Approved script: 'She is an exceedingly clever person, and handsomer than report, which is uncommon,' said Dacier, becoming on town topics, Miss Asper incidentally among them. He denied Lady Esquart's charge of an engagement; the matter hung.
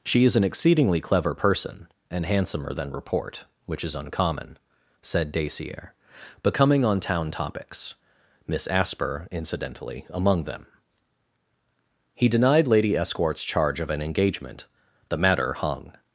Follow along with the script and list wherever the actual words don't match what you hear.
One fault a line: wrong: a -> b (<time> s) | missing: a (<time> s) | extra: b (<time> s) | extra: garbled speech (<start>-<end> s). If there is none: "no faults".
no faults